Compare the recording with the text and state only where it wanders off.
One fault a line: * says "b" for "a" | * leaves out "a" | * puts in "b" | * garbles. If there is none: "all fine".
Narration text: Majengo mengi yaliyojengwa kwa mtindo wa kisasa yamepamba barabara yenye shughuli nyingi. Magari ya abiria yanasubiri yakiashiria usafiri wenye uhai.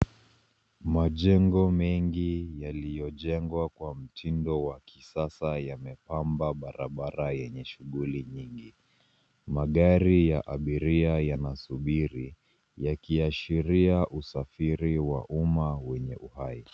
* puts in "wa umma"